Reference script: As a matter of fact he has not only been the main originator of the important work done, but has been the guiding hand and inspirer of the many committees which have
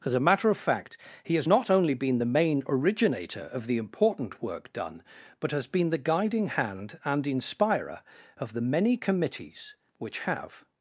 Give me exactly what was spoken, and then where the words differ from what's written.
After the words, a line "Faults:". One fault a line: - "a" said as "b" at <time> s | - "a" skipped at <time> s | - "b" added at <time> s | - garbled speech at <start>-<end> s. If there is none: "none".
As a matter of fact he has not only been the main originator of the important work done, but has been the guiding hand and inspirer of the many committees which have
Faults:
none